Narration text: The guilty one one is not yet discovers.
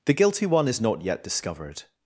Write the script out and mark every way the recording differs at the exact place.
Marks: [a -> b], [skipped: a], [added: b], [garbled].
The guilty one [skipped: one] is not yet [discovers. -> discovered]